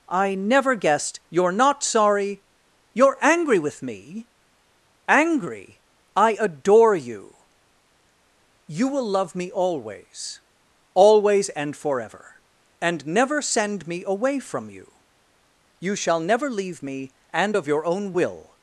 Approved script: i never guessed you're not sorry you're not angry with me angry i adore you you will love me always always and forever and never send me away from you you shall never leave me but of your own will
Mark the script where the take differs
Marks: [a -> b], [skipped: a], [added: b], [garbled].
i never guessed you're not sorry you're [skipped: not] angry with me angry i adore you you will love me always always and forever and never send me away from you you shall never leave me [but -> and] of your own will